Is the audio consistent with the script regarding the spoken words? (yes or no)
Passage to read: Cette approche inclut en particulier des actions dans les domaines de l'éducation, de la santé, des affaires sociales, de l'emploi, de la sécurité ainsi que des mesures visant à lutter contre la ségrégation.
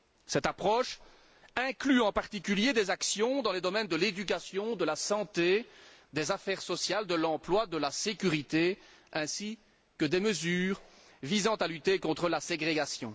yes